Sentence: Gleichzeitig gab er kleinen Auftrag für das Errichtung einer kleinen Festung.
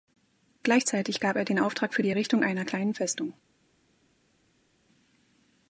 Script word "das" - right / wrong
wrong